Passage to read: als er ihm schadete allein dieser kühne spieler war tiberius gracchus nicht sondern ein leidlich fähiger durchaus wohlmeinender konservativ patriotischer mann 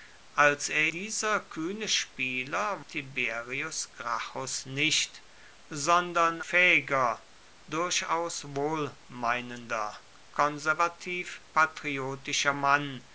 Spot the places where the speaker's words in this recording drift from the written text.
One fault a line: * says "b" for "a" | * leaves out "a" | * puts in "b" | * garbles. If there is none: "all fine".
* leaves out "ihm schadete allein"
* leaves out "war"
* leaves out "ein leidlich"